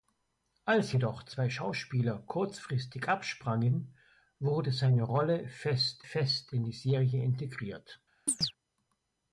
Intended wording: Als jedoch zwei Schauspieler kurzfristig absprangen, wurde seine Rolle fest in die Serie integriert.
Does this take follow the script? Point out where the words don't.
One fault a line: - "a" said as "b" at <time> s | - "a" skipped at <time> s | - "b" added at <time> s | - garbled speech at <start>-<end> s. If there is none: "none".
- "fest" added at 6.0 s